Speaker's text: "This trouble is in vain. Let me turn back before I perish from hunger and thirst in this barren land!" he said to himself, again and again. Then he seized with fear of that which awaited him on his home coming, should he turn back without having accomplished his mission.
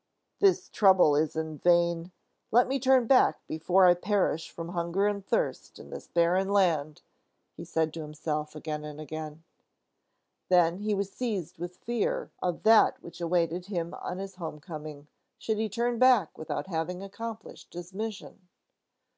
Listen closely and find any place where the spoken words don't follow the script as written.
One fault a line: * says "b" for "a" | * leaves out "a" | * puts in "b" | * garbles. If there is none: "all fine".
* puts in "was"